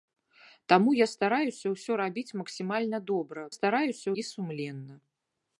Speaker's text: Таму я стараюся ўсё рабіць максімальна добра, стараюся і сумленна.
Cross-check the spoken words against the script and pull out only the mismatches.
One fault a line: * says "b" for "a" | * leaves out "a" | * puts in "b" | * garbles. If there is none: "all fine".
all fine